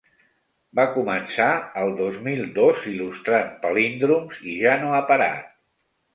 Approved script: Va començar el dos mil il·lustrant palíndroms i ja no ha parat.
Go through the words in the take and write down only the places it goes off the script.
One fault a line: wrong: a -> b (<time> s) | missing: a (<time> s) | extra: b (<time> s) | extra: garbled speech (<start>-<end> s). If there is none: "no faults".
extra: dos (2.6 s)